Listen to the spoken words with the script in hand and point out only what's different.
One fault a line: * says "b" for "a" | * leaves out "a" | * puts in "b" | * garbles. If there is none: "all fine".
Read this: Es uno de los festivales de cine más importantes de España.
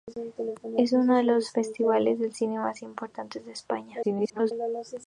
* garbles